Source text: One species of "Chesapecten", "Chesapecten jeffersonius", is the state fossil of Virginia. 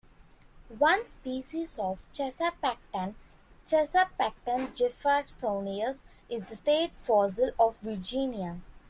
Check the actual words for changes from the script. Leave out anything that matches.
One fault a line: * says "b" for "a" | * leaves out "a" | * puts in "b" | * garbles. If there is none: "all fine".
all fine